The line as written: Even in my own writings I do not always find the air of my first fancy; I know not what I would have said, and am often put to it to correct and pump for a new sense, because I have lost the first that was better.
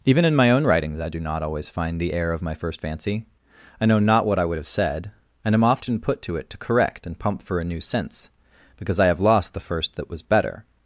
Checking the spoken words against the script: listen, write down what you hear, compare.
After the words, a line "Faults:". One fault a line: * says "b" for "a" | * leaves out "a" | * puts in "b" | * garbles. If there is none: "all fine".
Even in my own writings I do not always find the air of my first fancy; I know not what I would have said, and am often put to it to correct and pump for a new sense, because I have lost the first that was better.
Faults:
all fine